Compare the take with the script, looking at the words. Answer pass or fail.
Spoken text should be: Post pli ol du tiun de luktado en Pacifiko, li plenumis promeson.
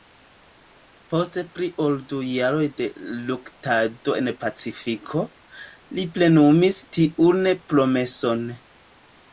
fail